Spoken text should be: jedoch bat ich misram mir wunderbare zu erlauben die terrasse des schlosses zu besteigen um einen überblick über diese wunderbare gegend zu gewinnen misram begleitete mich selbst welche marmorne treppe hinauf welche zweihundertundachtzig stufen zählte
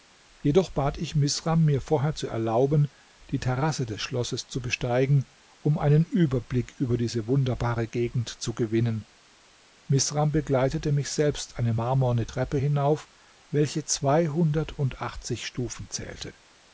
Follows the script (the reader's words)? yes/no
no